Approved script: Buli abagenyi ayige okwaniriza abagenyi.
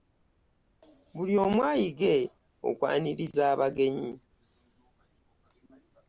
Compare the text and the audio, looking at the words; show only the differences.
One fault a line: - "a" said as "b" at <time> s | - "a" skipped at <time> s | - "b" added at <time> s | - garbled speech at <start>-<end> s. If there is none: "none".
- "abagenyi" said as "omu" at 1.4 s